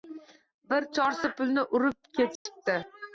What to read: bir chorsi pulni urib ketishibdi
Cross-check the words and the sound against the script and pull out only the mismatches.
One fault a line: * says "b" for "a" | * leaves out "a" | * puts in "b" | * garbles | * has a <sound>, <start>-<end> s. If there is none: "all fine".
* has a dropout, 2.4-2.5 s